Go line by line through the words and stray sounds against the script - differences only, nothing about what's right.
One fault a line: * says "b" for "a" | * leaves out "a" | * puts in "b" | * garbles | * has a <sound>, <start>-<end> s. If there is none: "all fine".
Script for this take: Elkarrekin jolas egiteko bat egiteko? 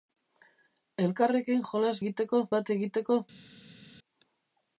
all fine